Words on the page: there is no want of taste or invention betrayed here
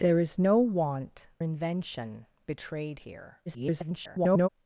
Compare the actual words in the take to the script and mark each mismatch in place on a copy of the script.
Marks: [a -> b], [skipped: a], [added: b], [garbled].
there is no want [skipped: of taste or] invention betrayed here [garbled]